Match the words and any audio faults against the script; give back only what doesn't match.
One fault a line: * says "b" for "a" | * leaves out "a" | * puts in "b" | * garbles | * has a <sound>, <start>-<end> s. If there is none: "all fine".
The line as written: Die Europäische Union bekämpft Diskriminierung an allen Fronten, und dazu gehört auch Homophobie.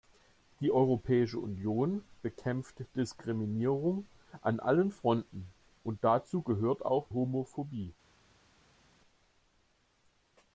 all fine